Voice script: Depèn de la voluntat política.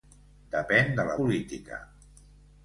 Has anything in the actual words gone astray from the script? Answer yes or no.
yes